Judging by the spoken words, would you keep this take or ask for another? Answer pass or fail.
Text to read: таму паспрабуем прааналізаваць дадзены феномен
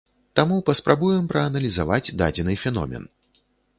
pass